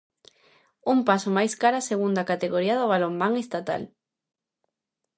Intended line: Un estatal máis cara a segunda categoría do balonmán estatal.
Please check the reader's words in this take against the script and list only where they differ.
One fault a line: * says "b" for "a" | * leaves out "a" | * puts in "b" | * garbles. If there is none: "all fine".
* says "paso" for "estatal"